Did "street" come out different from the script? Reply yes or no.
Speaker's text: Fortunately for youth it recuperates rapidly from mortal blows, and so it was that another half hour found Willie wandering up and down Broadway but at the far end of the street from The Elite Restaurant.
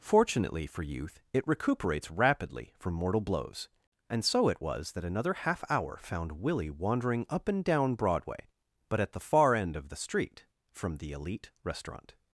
no